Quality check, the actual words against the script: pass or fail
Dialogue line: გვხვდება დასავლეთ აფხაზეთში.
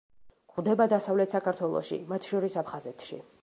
fail